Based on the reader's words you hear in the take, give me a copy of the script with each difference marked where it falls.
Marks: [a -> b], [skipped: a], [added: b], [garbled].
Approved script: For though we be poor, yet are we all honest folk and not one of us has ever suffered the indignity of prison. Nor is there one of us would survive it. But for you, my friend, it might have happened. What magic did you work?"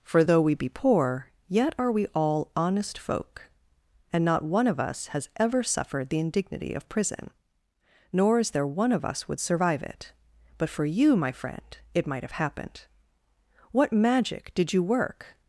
For though we be poor, yet are we all honest folk and not one of us has ever suffered the indignity of prison. Nor is there one of us would survive it. But for you, my friend, it might have happened. What magic did you work?"